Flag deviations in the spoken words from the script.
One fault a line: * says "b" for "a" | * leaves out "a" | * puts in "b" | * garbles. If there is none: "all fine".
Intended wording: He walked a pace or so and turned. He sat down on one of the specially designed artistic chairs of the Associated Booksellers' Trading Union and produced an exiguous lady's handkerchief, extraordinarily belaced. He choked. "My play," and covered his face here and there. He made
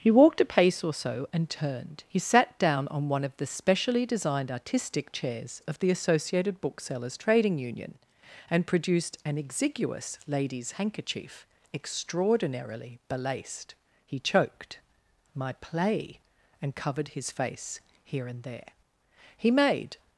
all fine